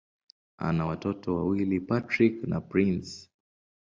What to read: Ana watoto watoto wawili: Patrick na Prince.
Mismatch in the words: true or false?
true